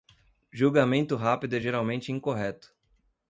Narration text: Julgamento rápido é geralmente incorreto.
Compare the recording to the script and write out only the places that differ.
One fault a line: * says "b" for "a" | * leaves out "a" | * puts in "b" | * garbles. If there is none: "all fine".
all fine